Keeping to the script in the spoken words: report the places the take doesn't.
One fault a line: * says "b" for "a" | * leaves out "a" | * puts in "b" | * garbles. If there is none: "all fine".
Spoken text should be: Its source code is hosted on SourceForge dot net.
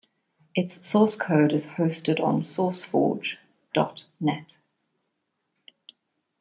all fine